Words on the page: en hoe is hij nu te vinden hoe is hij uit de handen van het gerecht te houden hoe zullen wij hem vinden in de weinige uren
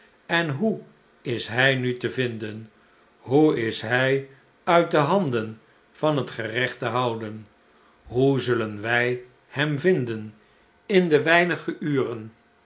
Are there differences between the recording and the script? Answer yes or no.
no